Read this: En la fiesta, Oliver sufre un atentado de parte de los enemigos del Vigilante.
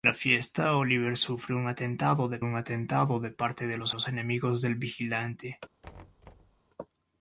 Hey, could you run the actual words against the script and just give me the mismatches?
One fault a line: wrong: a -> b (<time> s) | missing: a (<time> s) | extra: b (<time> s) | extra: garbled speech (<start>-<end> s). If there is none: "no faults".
extra: un atentado de (2.4 s)
extra: los (3.9 s)